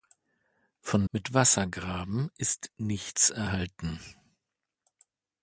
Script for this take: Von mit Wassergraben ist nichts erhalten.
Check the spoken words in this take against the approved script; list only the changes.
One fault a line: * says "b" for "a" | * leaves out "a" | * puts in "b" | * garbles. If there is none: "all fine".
all fine